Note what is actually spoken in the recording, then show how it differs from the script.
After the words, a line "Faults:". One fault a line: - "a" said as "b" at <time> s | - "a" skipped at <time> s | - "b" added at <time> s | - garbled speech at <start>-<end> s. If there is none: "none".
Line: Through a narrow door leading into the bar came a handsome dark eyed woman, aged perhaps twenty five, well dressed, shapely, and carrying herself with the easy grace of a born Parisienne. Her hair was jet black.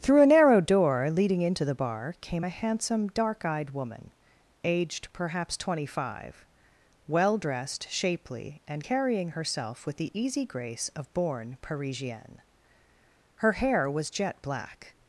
Through a narrow door leading into the bar came a handsome dark eyed woman, aged perhaps twenty five, well dressed, shapely, and carrying herself with the easy grace of born Parisienne. Her hair was jet black.
Faults:
- "a" skipped at 11.1 s